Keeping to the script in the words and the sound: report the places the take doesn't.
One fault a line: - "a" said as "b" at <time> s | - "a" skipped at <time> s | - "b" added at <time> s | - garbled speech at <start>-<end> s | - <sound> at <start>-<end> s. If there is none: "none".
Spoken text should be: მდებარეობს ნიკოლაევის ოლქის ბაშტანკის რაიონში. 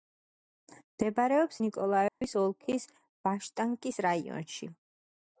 - dropout at 2.1-2.2 s